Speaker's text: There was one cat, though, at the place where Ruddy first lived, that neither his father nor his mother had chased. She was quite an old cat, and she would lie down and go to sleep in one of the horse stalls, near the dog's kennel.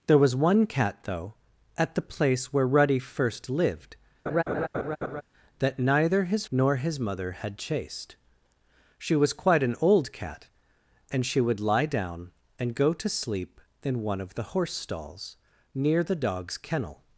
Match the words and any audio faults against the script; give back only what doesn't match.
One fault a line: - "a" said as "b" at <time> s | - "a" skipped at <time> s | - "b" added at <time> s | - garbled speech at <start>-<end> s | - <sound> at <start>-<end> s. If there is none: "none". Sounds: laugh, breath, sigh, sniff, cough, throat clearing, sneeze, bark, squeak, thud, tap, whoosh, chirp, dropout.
- laugh at 4.3-5.2 s
- "father" skipped at 6.5 s